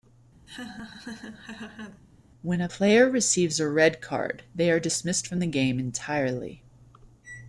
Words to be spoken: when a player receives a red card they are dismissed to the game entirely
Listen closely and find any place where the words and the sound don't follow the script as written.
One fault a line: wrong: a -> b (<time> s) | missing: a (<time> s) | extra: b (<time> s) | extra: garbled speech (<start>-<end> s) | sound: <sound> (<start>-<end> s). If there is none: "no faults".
sound: laugh (0.5-2.0 s)
wrong: to -> from (5.2 s)